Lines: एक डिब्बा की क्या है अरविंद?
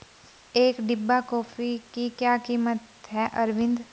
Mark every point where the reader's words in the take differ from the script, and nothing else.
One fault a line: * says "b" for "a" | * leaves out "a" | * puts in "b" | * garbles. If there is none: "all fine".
* puts in "कॉफी"
* puts in "कीमत"